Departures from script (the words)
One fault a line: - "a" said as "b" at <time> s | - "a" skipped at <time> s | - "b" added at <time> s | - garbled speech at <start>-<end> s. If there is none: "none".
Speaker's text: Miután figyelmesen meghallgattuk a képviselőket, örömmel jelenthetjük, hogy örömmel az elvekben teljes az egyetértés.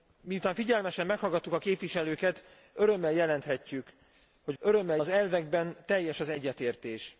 none